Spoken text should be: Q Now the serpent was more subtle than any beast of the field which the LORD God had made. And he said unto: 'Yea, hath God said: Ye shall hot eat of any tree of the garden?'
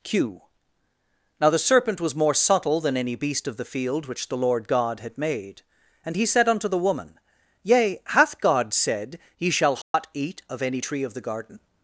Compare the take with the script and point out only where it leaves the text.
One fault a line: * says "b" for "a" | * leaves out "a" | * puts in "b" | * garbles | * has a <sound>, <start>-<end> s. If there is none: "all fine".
* puts in "the woman"
* has a dropout, 9.8-9.9 s